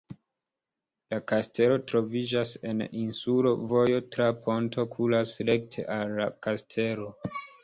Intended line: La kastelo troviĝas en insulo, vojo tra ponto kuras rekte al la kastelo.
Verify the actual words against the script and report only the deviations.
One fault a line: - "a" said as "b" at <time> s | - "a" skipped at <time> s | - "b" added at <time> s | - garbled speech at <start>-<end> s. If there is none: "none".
none